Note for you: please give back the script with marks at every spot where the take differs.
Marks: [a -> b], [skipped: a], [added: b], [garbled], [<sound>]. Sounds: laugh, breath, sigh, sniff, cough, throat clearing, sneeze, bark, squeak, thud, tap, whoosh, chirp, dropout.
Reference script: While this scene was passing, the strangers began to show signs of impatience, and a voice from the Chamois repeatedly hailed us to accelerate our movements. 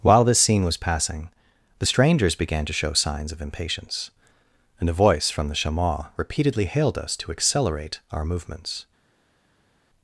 While this scene was passing, the strangers began to show signs of impatience, and a voice from the Chamois repeatedly hailed us to accelerate our movements.